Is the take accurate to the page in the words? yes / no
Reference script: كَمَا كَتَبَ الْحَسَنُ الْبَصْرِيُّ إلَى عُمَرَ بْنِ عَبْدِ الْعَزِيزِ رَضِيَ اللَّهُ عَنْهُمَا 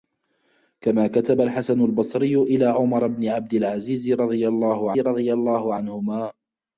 no